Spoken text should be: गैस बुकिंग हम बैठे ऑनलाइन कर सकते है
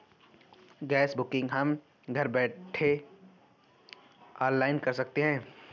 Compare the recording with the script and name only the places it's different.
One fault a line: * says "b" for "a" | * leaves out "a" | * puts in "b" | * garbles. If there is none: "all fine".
* puts in "घर"